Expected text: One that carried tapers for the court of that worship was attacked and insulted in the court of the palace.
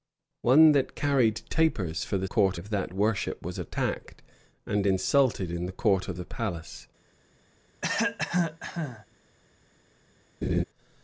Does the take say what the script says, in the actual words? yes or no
yes